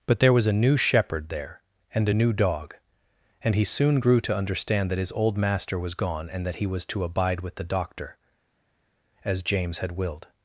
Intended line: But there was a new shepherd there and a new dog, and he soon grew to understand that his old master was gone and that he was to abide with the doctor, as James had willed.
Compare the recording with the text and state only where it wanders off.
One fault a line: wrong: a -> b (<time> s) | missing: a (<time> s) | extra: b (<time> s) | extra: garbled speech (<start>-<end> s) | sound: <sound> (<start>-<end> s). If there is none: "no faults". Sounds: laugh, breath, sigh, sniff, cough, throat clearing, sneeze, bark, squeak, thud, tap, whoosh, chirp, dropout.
no faults